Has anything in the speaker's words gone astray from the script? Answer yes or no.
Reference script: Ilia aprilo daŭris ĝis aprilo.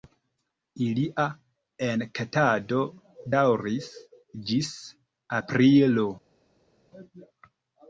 yes